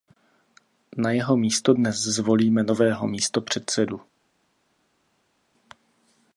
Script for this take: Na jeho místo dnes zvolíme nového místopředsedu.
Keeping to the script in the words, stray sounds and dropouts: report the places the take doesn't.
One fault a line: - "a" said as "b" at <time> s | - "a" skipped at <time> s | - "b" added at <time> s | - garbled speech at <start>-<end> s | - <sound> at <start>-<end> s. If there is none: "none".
none